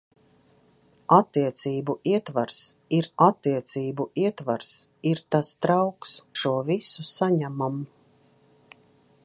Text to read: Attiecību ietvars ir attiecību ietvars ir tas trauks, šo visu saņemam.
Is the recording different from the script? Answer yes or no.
no